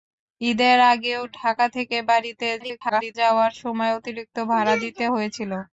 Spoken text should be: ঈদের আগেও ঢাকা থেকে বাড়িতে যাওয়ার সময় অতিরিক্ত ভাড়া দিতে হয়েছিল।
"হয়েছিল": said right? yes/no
yes